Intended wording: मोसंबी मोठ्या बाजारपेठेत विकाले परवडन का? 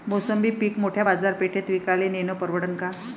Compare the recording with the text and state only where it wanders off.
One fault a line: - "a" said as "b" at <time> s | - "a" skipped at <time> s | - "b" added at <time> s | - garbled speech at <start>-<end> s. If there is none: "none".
- "पीक" added at 0.5 s
- "नेनं" added at 2.1 s